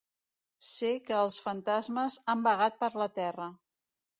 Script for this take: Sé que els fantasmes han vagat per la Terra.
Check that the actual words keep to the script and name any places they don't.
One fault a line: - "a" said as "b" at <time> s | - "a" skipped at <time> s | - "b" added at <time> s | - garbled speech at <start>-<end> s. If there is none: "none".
none